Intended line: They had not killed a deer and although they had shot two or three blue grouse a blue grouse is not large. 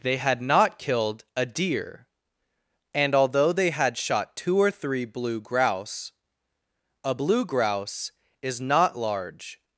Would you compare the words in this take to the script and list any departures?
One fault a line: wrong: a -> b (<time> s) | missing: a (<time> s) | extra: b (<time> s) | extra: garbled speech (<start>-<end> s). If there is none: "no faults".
no faults